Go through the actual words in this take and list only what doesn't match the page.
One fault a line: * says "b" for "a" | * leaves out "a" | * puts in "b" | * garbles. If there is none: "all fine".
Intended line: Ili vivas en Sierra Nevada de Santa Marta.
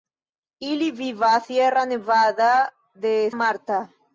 * leaves out "en"
* leaves out "Santa"